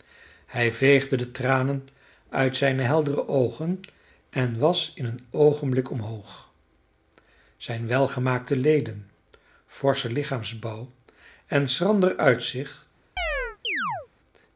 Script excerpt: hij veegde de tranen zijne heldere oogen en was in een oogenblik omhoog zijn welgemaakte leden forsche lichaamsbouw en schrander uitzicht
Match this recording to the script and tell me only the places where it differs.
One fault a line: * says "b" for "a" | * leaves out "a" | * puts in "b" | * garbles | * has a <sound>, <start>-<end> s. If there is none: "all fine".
* puts in "uit"
* has a chirp, 13.2-14.1 s